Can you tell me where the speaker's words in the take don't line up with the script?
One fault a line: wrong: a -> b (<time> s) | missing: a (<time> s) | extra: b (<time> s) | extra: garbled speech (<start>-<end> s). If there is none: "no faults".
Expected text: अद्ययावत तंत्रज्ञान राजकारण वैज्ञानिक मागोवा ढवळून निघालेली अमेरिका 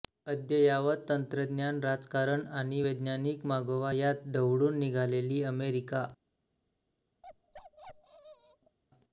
extra: आणि (2.5 s)
extra: यात (3.9 s)